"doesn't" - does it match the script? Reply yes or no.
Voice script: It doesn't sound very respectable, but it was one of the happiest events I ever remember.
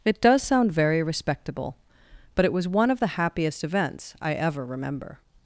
no